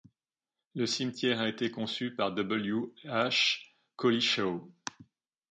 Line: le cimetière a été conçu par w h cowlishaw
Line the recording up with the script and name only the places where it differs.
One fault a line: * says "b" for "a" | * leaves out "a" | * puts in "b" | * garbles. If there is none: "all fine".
all fine